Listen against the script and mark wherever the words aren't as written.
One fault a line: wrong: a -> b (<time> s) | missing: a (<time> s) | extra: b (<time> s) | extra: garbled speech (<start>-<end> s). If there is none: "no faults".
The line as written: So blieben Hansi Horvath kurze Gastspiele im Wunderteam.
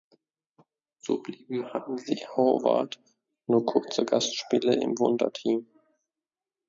extra: nur (3.5 s)